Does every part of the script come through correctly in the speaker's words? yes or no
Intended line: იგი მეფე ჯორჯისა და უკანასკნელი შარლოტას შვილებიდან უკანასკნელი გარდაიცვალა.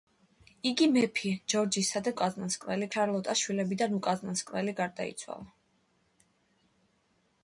yes